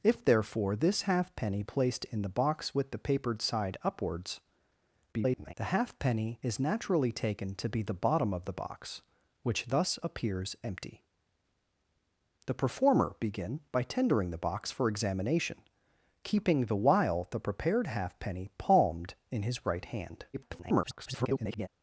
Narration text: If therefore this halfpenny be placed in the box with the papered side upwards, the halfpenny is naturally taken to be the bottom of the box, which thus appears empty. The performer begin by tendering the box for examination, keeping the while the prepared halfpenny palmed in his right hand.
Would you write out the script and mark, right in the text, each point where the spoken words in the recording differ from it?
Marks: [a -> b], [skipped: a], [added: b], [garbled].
If therefore this halfpenny [skipped: be] placed in the box with the papered side upwards, [garbled] the halfpenny is naturally taken to be the bottom of the box, which thus appears empty. The performer begin by tendering the box for examination, keeping the while the prepared halfpenny palmed in his right hand. [garbled]